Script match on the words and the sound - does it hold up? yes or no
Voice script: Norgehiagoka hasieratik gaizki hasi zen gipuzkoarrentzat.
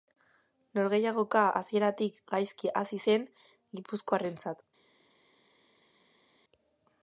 yes